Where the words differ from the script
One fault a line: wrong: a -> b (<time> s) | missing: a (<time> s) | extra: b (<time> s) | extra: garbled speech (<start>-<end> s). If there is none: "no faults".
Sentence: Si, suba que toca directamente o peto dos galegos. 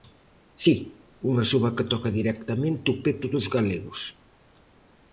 extra: unha (1.3 s)